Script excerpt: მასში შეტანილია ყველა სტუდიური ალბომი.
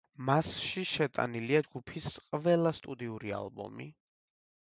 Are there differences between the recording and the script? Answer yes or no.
yes